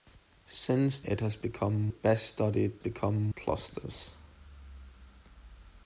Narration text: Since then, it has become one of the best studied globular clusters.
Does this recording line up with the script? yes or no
no